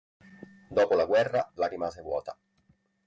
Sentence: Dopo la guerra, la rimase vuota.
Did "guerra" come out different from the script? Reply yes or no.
no